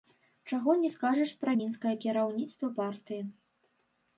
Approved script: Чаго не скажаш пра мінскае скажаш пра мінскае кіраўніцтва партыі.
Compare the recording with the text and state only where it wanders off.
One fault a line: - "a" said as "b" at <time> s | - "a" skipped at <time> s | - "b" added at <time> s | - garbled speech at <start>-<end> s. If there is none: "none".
- "скажаш пра мінскае" skipped at 1.9 s